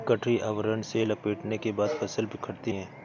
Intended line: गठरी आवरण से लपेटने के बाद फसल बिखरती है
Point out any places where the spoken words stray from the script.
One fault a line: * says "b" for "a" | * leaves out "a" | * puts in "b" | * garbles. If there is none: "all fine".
all fine